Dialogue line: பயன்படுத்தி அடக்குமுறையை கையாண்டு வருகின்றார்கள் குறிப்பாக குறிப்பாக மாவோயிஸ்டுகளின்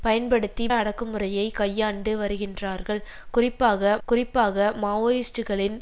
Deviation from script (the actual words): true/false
false